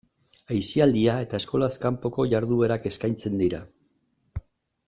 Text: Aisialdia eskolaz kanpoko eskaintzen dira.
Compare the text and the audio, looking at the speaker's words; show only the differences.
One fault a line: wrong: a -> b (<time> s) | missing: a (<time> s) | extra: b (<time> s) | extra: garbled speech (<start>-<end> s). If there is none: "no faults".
extra: eta (1.2 s)
extra: jarduerak (2.3 s)